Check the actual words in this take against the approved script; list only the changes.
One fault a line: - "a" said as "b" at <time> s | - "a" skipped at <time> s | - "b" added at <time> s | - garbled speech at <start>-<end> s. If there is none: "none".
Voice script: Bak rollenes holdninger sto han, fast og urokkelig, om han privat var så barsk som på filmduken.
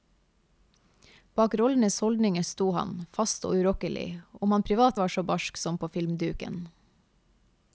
none